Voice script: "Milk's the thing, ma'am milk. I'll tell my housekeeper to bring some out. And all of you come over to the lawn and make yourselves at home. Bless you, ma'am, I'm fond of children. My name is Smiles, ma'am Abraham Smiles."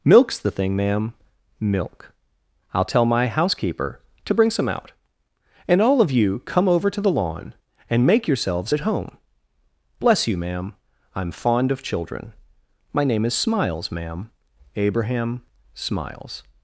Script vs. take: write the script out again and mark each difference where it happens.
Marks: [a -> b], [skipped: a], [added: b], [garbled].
"Milk's the thing, ma'am milk. I'll tell my housekeeper to bring some out. And all of you come over to the lawn and make yourselves at home. Bless you, ma'am, I'm fond of children. My name is Smiles, ma'am Abraham Smiles."